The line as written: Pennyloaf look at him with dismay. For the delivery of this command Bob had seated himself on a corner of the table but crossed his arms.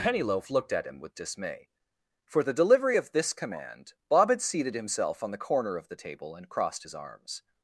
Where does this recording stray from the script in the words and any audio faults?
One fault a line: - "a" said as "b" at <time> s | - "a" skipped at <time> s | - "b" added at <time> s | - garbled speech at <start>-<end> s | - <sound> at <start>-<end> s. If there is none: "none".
- "look" said as "looked" at 0.5 s
- "a" said as "the" at 5.3 s
- "but" said as "and" at 6.3 s